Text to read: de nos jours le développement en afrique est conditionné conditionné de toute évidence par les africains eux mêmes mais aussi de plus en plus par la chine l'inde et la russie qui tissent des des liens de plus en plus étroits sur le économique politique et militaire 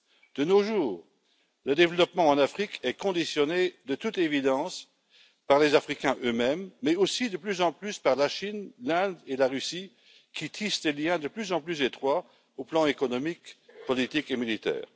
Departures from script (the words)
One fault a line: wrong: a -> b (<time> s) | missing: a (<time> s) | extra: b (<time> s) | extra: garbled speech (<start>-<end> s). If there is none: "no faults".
missing: conditionné (3.8 s)
missing: des (10.9 s)
extra: plan (12.7 s)